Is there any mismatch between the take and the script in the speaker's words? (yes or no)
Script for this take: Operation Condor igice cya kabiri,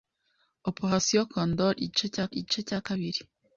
yes